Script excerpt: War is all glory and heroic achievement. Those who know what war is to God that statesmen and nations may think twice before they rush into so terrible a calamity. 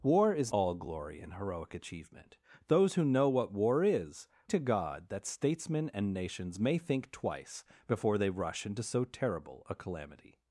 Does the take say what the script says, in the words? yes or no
yes